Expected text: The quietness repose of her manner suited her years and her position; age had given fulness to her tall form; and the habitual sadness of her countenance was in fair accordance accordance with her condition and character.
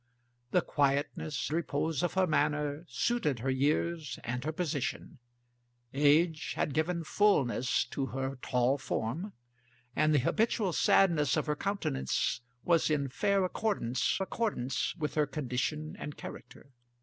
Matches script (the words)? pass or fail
pass